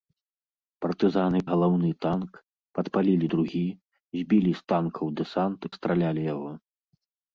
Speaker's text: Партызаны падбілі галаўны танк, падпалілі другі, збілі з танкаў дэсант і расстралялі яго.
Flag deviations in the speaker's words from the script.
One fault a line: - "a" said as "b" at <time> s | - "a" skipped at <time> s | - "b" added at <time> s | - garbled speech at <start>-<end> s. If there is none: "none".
- "падбілі" skipped at 1.4 s
- "і" skipped at 5.6 s